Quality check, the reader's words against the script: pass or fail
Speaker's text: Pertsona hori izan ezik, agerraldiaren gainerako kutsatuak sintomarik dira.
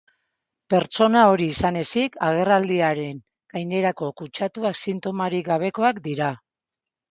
fail